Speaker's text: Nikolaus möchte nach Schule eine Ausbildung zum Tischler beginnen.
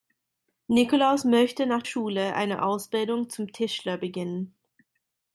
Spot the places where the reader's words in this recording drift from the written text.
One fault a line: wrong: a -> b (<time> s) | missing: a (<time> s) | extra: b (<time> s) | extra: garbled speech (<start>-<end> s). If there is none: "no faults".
no faults